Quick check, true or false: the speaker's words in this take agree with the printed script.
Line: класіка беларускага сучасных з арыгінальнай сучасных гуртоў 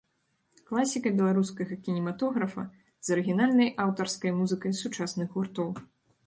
false